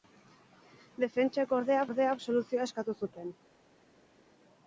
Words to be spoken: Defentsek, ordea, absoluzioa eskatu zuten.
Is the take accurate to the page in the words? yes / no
no